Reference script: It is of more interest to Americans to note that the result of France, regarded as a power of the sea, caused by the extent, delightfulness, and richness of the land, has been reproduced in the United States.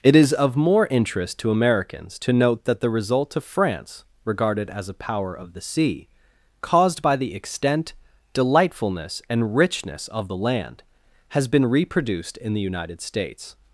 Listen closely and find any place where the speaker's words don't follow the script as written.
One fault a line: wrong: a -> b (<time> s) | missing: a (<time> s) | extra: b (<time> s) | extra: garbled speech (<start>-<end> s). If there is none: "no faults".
no faults